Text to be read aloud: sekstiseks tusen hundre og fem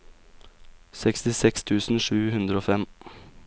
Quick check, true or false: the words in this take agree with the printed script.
false